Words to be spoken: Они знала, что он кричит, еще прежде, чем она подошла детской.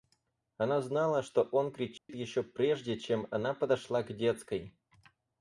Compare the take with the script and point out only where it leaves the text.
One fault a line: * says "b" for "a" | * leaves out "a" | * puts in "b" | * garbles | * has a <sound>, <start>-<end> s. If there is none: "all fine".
* says "Она" for "Они"
* has a dropout, 2.0-2.1 s
* puts in "к"